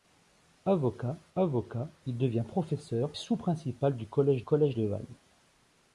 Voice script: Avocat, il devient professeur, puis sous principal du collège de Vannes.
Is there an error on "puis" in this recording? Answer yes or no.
yes